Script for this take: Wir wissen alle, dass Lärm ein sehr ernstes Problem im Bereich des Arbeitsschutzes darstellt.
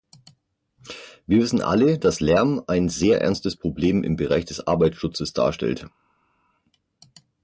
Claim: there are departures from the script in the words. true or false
false